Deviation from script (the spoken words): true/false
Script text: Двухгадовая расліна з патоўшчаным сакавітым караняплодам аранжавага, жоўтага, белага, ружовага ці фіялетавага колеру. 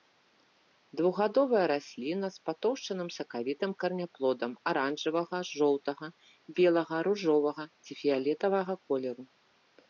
false